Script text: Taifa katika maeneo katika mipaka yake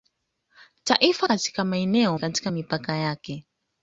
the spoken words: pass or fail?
pass